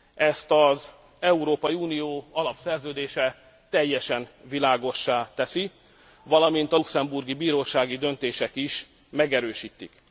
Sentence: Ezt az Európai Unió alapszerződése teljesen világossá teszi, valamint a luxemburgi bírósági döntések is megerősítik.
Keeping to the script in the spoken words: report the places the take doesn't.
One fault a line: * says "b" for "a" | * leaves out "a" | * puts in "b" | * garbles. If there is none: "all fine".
all fine